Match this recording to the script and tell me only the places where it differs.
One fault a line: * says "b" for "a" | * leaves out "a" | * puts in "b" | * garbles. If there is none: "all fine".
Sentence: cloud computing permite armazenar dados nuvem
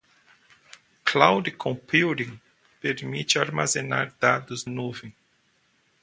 all fine